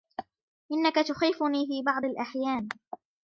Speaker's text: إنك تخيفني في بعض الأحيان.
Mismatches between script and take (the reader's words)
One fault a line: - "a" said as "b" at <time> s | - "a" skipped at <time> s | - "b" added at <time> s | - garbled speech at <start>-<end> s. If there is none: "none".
none